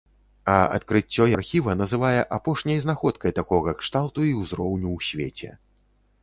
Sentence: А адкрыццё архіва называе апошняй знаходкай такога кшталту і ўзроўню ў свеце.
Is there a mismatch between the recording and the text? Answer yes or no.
no